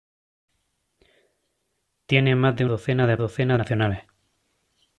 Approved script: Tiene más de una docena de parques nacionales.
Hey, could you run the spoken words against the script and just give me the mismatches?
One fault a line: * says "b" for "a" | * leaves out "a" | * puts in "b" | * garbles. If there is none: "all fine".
* leaves out "una"
* says "docena" for "parques"